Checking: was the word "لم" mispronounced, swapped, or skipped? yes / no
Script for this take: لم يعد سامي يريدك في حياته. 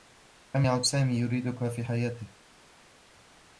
no